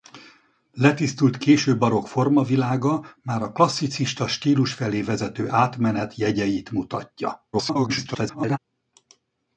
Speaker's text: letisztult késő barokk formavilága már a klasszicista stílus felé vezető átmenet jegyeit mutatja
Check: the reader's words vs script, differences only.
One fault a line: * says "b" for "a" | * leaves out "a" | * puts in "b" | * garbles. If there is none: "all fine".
* garbles